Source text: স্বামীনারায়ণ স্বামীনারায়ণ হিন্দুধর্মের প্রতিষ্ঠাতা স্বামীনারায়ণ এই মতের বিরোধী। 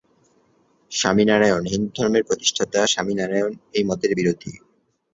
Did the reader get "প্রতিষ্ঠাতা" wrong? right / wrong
right